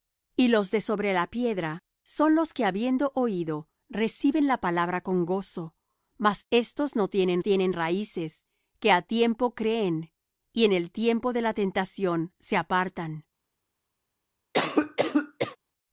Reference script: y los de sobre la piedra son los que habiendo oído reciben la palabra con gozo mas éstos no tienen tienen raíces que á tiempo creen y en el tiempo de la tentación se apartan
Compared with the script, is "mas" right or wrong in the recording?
right